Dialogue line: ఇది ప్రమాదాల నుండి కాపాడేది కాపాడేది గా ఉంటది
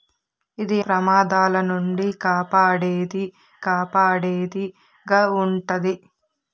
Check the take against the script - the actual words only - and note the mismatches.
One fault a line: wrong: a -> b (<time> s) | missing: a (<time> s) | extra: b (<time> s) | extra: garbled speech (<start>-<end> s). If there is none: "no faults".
no faults